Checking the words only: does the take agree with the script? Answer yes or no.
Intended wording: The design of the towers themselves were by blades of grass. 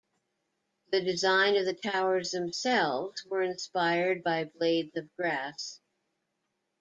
no